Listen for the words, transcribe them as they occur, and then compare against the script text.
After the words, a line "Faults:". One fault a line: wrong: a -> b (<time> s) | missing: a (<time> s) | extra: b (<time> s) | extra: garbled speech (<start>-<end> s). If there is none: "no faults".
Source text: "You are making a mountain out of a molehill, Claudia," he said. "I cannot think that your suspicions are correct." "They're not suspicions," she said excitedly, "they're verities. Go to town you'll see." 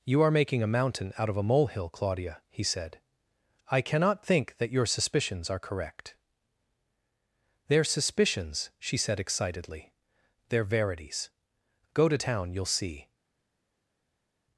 "You are making a mountain out of a molehill, Claudia," he said. "I cannot think that your suspicions are correct." "They're suspicions," she said excitedly, "they're verities. Go to town you'll see."
Faults:
missing: not (7.8 s)